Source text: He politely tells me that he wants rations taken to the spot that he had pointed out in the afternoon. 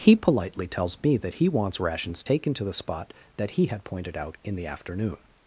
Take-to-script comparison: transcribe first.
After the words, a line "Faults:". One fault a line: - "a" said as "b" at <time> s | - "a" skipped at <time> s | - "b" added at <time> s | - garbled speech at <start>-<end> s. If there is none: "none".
He politely tells me that he wants rations taken to the spot that he had pointed out in the afternoon.
Faults:
none